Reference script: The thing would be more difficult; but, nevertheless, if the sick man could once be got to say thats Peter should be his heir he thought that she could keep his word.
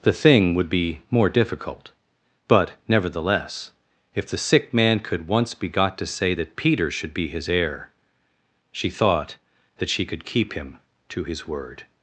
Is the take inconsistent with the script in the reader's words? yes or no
yes